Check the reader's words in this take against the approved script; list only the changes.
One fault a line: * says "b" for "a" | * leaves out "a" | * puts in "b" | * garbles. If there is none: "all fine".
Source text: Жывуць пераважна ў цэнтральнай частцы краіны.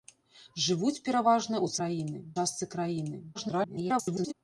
* says "краіны" for "цэнтральнай"
* garbles